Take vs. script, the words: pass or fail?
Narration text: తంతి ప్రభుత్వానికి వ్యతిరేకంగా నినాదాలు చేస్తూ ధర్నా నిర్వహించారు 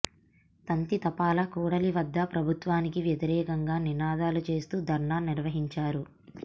fail